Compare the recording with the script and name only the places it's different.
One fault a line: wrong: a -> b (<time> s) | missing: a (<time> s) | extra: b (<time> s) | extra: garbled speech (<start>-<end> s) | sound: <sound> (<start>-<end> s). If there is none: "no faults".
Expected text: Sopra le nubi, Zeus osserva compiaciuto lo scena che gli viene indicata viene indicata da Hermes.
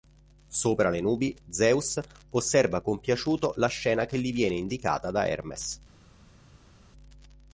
wrong: lo -> la (3.6 s)
missing: viene indicata (5.1 s)